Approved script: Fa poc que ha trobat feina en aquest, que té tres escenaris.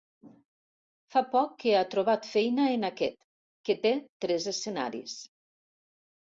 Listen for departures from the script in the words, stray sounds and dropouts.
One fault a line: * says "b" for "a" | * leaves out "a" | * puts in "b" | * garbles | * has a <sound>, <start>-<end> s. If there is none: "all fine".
all fine